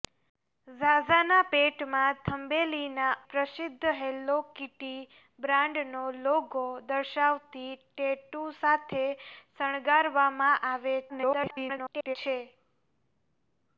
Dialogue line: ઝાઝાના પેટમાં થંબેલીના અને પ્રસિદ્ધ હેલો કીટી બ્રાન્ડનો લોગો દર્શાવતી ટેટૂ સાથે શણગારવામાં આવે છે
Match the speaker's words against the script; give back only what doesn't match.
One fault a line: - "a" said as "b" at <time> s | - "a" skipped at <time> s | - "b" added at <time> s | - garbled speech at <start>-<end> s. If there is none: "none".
- "અને" skipped at 3.1 s
- garbled speech at 11.1-12.2 s